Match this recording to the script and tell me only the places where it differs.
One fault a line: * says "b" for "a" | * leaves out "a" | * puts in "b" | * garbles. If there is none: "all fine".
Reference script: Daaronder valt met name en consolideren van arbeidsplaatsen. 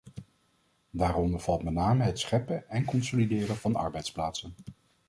* puts in "het scheppen"